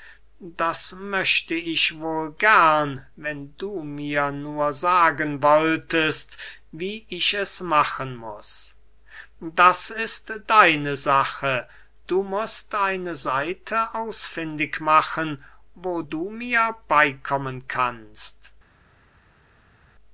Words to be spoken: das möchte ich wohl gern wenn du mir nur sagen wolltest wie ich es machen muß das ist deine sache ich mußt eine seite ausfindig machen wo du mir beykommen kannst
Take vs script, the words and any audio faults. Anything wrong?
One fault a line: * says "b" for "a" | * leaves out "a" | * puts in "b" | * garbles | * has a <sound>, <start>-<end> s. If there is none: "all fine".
* says "du" for "ich"